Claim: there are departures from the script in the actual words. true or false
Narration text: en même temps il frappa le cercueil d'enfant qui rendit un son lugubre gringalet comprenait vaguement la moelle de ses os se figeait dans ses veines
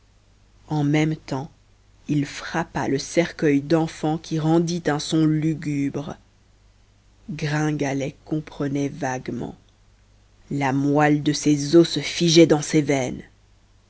false